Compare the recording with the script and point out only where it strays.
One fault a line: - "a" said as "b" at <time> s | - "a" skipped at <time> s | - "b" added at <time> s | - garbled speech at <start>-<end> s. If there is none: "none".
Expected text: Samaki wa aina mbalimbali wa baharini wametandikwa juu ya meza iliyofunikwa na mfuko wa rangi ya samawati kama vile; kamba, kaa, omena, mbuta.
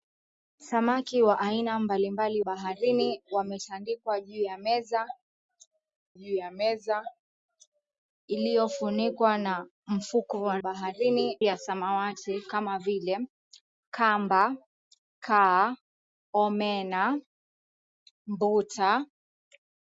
- "wa" skipped at 2.4 s
- "juu ya meza" added at 6.1 s
- "rangi" said as "baharini" at 10.6 s